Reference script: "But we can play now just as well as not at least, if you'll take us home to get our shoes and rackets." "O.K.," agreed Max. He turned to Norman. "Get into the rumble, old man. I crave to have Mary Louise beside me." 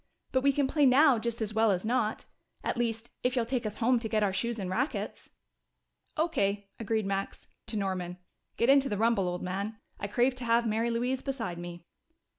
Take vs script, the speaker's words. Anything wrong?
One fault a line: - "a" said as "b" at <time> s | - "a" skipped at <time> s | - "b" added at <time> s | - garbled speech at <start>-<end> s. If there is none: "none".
- "He turned" skipped at 7.5 s